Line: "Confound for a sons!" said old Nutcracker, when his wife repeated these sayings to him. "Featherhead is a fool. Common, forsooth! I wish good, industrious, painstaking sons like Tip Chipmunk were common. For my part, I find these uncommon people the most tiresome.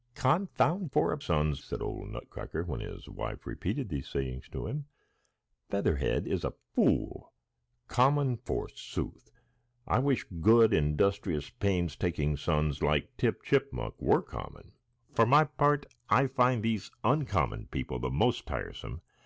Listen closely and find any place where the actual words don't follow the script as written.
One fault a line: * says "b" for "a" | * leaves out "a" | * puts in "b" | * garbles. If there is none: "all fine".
all fine